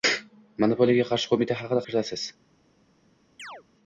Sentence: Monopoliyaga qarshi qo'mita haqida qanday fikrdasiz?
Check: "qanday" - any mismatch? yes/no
yes